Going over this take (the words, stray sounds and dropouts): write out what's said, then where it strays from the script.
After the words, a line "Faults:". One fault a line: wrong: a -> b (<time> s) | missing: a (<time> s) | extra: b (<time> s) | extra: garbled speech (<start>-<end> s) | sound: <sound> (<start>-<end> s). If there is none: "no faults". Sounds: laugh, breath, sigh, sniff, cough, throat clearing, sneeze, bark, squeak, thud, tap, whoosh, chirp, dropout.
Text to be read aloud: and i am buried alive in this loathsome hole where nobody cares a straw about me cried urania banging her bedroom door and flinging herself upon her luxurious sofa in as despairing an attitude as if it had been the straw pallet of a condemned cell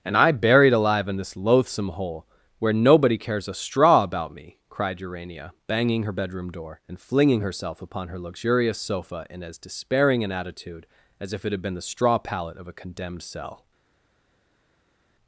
and i buried alive in this loathsome hole where nobody cares a straw about me cried urania banging her bedroom door and flinging herself upon her luxurious sofa in as despairing an attitude as if it had been the straw pallet of a condemned cell
Faults:
missing: am (0.3 s)